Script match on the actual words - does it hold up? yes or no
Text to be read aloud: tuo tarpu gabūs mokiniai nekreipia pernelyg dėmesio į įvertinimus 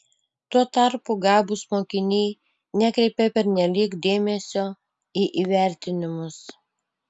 yes